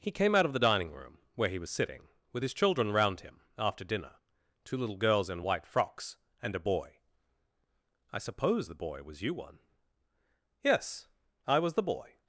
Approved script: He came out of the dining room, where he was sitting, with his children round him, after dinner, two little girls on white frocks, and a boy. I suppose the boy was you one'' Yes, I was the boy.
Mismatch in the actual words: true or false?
true